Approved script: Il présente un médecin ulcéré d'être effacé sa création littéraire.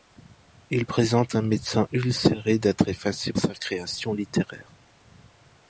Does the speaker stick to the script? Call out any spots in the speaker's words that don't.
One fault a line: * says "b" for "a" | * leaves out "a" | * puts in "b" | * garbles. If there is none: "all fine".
all fine